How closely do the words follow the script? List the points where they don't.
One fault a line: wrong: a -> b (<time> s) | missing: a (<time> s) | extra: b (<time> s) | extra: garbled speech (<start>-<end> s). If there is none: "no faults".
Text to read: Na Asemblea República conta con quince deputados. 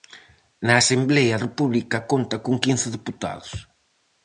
no faults